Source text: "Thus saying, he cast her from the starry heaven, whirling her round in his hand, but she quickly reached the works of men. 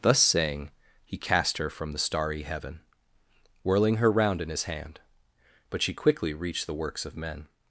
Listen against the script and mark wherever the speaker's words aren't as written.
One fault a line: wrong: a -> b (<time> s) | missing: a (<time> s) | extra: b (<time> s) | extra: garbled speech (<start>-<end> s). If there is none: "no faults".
no faults